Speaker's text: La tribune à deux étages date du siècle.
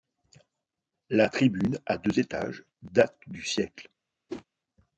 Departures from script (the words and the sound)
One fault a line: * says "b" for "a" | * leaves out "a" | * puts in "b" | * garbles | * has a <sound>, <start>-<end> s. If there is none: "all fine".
* has a whoosh, 4.3-4.5 s